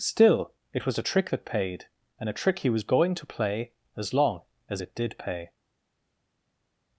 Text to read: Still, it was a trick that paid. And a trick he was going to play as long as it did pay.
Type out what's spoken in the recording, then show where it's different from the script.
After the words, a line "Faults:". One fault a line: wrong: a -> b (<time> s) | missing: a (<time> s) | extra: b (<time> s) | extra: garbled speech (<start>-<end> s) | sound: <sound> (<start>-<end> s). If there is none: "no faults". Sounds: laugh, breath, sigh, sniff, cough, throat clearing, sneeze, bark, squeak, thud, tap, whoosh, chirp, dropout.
Still, it was a trick that paid. And a trick he was going to play as long as it did pay.
Faults:
no faults